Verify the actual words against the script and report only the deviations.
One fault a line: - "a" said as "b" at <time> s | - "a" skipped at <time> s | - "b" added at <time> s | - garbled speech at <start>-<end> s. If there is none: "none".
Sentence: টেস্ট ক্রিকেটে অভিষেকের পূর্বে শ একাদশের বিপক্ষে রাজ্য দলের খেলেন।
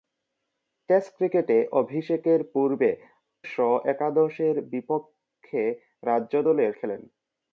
none